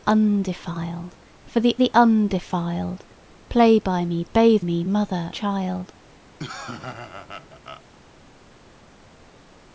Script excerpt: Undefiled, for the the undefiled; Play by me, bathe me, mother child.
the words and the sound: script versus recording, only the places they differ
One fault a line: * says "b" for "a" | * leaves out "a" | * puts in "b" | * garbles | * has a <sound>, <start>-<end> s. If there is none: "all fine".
* has a laugh, 6.4-7.8 s